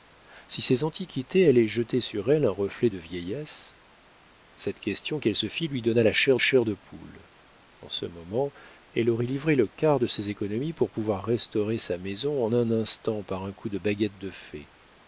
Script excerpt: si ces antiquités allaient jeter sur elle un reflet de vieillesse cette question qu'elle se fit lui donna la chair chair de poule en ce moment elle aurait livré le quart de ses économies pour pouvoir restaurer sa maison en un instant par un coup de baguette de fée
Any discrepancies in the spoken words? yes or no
no